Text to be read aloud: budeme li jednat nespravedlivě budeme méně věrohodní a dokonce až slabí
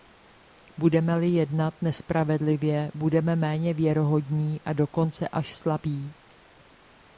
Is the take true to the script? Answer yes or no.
yes